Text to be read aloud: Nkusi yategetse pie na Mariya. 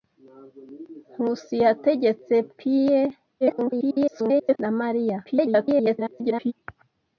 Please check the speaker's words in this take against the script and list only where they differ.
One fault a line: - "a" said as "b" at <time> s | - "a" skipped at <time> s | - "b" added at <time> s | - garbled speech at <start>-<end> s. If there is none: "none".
- garbled speech at 3.4-4.6 s
- garbled speech at 5.2-6.5 s